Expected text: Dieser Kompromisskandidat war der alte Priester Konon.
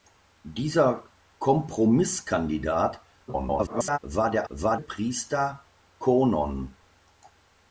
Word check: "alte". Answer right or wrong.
wrong